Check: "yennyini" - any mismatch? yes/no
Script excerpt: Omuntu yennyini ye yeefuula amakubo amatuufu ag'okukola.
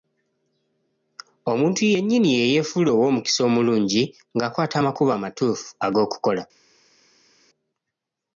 no